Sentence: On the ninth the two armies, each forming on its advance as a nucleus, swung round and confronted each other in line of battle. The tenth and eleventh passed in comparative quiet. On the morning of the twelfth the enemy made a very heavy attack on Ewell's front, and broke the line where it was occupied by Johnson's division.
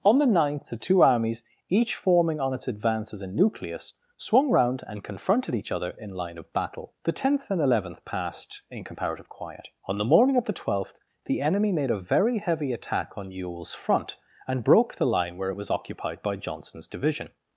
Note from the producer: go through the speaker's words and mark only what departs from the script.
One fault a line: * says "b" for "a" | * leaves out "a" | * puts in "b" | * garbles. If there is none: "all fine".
all fine